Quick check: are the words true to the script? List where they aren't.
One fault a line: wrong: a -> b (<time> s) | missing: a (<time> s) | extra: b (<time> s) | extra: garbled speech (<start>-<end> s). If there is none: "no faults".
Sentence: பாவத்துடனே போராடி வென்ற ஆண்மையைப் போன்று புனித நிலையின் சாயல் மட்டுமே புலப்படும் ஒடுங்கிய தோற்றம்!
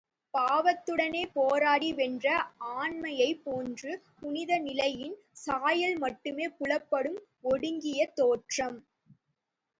no faults